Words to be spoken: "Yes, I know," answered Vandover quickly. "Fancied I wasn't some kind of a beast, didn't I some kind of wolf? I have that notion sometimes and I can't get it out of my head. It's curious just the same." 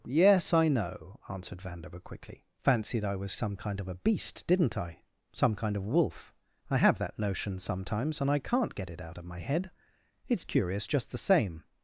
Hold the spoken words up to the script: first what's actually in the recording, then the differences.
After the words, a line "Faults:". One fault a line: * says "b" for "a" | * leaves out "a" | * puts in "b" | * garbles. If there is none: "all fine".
"Yes, I know," answered Vandover quickly. "Fancied I was some kind of a beast, didn't I some kind of wolf? I have that notion sometimes and I can't get it out of my head. It's curious just the same."
Faults:
* says "was" for "wasn't"